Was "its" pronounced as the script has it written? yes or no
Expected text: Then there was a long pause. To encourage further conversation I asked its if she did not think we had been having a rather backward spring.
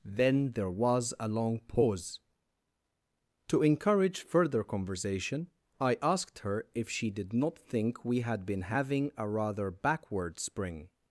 no